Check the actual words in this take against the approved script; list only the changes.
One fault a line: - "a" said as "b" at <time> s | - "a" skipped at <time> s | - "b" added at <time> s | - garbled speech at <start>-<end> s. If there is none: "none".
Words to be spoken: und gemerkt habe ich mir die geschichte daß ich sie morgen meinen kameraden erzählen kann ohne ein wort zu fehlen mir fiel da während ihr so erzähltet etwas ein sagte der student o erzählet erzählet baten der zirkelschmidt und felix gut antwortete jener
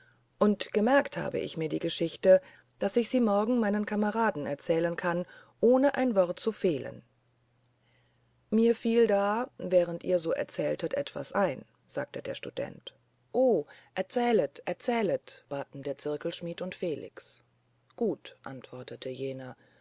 none